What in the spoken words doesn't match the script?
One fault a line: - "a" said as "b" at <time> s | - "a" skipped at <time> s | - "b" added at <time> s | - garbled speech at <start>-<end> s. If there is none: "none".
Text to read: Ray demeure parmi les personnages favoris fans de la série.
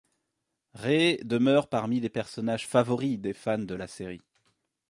- "des" added at 3.2 s